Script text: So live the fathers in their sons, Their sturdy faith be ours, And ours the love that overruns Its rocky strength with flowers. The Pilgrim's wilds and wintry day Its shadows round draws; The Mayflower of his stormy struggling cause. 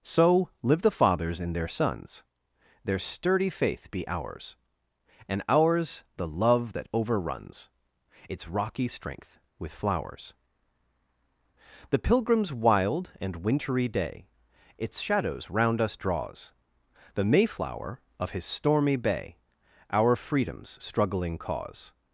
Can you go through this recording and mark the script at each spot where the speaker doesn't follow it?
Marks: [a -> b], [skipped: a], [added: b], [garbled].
So live the fathers in their sons, Their sturdy faith be ours, And ours the love that overruns Its rocky strength with flowers. The Pilgrim's [wilds -> wild] and wintry day Its shadows round [added: us] draws; The Mayflower of his stormy [added: bay Our Freedom's] struggling cause.